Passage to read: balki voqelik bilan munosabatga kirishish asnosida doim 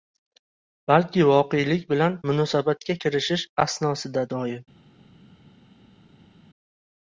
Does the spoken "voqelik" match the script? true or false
true